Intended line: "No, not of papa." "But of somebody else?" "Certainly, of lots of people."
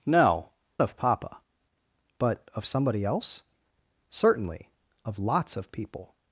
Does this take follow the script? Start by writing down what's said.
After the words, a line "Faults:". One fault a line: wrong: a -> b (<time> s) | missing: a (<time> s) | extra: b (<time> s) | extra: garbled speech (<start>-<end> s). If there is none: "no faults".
"No, of papa." "But of somebody else?" "Certainly, of lots of people."
Faults:
missing: not (0.5 s)